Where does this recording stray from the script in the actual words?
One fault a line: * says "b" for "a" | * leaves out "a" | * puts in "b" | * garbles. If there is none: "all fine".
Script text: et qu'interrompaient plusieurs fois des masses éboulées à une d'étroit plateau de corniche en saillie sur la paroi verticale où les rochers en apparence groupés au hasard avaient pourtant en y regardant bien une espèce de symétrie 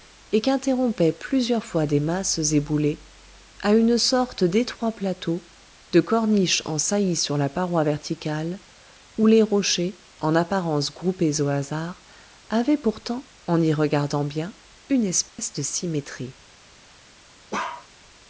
* puts in "sorte"